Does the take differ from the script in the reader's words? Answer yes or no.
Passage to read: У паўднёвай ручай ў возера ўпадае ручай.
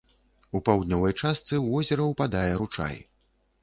yes